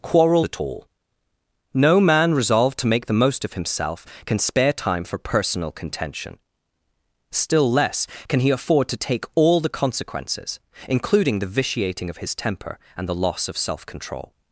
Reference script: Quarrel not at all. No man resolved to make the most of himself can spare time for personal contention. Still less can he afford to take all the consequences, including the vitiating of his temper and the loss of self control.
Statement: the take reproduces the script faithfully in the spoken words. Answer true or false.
false